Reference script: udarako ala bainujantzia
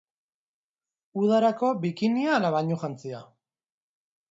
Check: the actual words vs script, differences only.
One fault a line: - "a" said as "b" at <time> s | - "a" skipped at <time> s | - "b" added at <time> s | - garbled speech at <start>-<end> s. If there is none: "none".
- "bikinia" added at 1.9 s